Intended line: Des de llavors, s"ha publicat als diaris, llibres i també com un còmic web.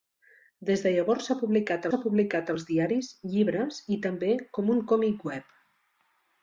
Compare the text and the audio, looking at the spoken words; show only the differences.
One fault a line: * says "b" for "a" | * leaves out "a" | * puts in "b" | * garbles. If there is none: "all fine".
* puts in "s"ha publicat"